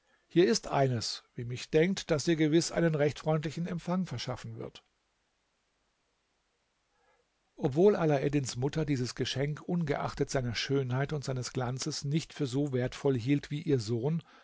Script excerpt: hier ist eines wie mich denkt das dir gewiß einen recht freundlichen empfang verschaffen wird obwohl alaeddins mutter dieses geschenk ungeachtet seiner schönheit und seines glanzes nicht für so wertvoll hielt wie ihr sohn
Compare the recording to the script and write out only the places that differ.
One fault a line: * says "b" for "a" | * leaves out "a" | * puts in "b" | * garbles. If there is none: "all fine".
all fine